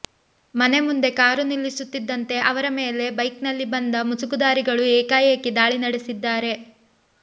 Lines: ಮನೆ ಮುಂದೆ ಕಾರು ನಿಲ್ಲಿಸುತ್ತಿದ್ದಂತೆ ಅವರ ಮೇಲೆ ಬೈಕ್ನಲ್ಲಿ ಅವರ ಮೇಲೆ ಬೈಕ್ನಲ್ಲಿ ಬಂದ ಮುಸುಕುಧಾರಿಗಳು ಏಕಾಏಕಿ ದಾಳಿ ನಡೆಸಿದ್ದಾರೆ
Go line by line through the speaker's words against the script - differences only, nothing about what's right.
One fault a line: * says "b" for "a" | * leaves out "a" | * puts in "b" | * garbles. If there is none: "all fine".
* leaves out "ಅವರ ಮೇಲೆ ಬೈಕ್ನಲ್ಲಿ"